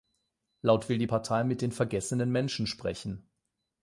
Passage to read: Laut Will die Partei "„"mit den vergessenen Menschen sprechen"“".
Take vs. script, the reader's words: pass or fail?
pass